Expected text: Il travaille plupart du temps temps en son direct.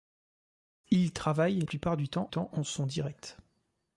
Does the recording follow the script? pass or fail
pass